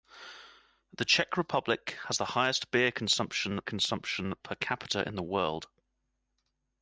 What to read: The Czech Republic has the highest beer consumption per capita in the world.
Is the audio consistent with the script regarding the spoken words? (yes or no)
no